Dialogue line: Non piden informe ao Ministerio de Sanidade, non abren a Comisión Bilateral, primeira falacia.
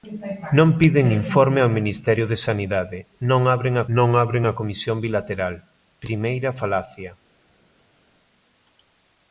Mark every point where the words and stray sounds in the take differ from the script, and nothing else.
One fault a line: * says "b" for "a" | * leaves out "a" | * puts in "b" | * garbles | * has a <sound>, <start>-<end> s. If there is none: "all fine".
* puts in "non abren a"